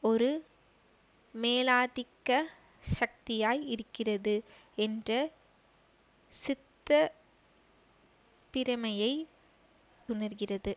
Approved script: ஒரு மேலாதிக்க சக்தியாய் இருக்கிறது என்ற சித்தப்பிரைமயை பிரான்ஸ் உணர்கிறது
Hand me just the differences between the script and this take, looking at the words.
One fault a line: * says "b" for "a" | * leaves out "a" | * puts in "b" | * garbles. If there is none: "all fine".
* leaves out "பிரான்ஸ்"